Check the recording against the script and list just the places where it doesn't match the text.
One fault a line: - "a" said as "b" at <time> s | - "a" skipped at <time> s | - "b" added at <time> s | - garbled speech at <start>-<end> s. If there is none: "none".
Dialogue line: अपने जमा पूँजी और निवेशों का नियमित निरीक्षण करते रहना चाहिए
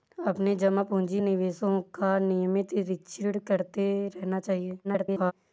- "और" skipped at 1.2 s
- garbled speech at 4.8-5.3 s